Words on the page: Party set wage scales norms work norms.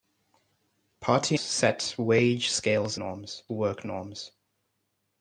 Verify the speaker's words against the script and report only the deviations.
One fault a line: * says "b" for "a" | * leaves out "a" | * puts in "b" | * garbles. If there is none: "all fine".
all fine